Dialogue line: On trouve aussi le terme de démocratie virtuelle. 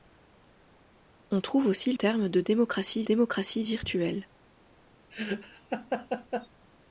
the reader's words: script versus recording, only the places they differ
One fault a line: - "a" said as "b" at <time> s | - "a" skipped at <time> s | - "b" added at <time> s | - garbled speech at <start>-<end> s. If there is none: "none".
- "le" skipped at 1.9 s
- "démocratie" added at 3.0 s